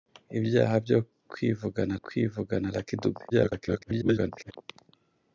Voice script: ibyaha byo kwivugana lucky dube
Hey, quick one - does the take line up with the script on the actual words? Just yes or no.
no